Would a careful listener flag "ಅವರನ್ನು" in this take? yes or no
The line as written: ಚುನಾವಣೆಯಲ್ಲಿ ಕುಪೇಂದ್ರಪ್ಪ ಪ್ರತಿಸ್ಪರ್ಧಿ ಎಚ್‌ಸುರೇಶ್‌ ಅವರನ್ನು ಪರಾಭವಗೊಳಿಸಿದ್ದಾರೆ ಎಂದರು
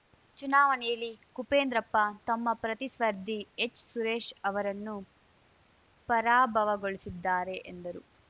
no